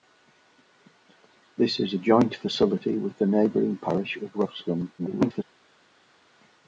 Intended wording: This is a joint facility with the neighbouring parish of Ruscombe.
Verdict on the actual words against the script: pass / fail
fail